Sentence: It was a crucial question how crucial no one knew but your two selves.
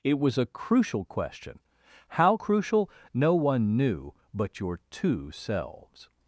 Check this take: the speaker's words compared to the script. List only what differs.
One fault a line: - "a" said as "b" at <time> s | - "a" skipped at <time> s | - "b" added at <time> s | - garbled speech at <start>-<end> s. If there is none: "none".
none